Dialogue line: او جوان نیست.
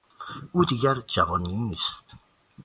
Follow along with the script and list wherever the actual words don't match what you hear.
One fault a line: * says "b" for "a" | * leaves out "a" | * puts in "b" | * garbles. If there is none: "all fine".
* puts in "دیگر"